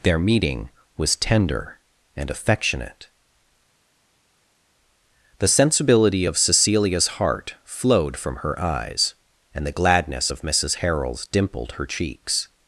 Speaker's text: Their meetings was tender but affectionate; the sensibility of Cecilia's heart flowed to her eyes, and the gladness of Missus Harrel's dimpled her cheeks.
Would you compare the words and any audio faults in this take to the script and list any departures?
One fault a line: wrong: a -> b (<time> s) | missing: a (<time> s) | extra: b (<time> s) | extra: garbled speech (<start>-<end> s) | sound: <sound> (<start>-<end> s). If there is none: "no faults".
wrong: meetings -> meeting (0.2 s)
wrong: but -> and (2.2 s)
wrong: to -> from (8.2 s)